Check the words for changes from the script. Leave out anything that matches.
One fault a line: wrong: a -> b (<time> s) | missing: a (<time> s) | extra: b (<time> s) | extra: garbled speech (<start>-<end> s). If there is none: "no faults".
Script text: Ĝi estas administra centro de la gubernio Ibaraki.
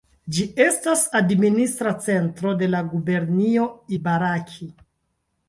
no faults